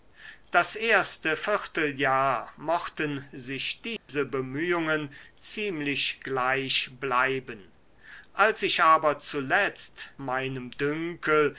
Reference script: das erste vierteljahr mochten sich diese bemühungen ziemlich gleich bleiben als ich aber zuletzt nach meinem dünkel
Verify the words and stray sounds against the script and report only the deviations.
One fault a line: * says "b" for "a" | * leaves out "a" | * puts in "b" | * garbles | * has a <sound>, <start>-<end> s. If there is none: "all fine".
* has a dropout, 4.0-4.1 s
* leaves out "nach"